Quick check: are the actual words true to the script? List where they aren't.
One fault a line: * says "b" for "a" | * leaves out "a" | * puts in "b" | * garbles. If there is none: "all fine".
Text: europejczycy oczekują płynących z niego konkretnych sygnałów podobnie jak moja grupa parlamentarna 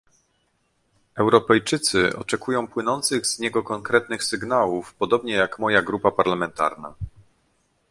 all fine